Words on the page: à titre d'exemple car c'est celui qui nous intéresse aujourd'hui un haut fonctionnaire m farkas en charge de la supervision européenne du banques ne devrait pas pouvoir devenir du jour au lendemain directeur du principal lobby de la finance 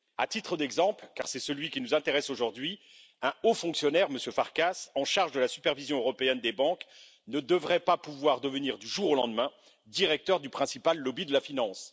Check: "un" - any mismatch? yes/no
no